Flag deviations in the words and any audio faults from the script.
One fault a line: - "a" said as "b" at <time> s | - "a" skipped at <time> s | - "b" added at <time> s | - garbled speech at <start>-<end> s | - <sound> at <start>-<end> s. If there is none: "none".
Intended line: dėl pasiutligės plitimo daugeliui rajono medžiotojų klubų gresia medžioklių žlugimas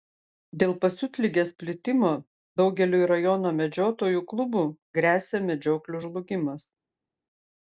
none